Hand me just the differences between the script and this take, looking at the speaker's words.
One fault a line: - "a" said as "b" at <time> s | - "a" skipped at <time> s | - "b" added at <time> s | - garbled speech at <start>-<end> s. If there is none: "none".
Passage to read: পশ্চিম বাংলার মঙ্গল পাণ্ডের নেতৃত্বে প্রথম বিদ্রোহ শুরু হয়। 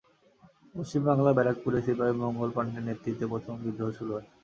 - "ব্যারাকপুরে সিপাহি" added at 1.4 s